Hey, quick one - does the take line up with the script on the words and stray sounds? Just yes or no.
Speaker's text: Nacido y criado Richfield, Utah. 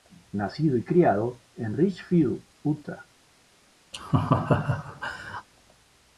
no